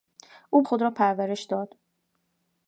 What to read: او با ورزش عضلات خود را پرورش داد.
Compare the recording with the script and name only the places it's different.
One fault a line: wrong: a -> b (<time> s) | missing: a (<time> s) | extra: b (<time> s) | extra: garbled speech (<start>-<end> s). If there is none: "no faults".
missing: با ورزش عضلات (0.6 s)